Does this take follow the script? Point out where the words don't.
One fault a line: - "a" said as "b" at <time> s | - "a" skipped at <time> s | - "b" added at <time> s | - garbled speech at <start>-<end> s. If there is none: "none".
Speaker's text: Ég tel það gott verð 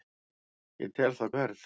- "gott" skipped at 1.3 s